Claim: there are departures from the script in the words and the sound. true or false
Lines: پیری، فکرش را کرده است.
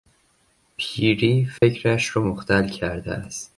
true